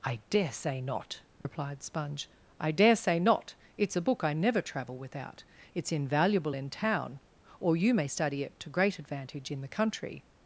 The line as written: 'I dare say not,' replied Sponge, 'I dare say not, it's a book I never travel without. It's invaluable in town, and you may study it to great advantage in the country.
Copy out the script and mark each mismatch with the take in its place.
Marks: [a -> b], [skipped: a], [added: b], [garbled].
'I dare say not,' replied Sponge, 'I dare say not, it's a book I never travel without. It's invaluable in town, [and -> or] you may study it to great advantage in the country.